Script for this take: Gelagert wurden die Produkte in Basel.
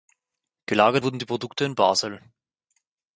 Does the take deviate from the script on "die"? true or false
false